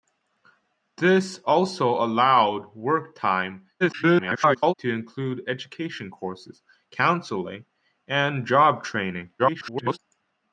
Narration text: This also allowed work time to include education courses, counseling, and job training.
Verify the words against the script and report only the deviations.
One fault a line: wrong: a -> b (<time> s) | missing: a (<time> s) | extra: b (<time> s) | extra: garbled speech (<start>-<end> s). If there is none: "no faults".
extra: garbled speech (3.8-4.7 s)
extra: garbled speech (9.4-10.0 s)